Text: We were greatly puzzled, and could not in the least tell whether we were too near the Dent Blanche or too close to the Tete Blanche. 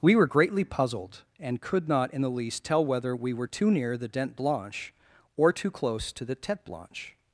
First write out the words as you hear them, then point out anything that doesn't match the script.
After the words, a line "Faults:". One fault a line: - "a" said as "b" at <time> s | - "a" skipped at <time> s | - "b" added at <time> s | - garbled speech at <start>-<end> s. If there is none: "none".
We were greatly puzzled, and could not in the least tell whether we were too near the Dent Blanche or too close to the Tete Blanche.
Faults:
none